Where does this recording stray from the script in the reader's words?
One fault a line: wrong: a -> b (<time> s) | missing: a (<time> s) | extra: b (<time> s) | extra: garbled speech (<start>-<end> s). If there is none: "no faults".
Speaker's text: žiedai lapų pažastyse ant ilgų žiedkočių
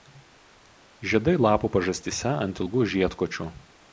no faults